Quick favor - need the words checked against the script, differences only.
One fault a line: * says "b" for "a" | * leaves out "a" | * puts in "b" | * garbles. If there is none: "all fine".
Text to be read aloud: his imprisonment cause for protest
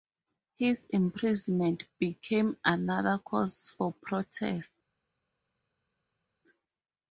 * puts in "became another"